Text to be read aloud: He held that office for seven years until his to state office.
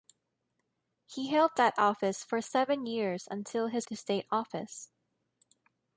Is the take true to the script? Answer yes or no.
yes